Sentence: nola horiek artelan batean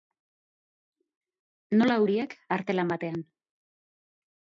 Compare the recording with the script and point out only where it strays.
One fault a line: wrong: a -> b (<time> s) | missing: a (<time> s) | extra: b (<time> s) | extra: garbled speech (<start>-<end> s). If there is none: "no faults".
no faults